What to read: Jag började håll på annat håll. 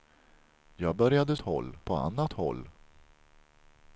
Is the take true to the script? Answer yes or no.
yes